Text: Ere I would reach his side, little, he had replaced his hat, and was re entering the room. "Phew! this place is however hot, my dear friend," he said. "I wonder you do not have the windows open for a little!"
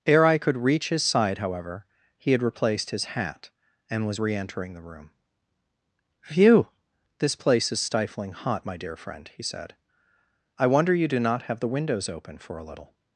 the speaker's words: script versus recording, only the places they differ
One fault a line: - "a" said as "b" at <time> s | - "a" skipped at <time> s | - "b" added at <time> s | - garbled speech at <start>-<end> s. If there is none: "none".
- "would" said as "could" at 0.4 s
- "little" said as "however" at 1.4 s
- "however" said as "stifling" at 7.8 s